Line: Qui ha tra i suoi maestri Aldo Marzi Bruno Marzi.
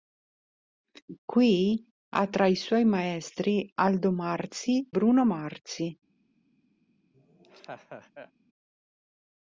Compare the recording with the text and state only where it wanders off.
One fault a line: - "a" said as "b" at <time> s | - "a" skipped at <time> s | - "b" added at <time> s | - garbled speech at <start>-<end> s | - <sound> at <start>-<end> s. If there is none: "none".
- laugh at 7.1-8.3 s